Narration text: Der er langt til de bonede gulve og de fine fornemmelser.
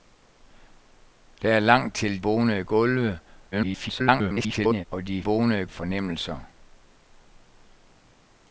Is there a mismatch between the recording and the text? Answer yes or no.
yes